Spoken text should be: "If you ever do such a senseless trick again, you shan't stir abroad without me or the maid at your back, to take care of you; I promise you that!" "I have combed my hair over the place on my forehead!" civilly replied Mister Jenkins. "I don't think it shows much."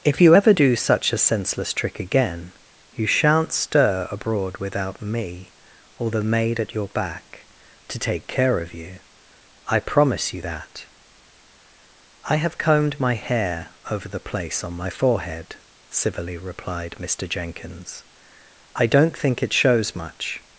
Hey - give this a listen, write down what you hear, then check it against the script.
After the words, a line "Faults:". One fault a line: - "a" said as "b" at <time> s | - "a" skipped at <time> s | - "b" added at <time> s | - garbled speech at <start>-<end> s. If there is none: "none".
"If you ever do such a senseless trick again, you shan't stir abroad without me or the maid at your back, to take care of you; I promise you that!" "I have combed my hair over the place on my forehead!" civilly replied Mister Jenkins. "I don't think it shows much."
Faults:
none